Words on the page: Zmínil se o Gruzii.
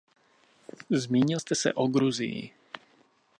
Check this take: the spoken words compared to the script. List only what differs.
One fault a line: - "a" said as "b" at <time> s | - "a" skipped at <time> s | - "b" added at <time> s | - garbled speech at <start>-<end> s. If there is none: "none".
- "jste" added at 1.4 s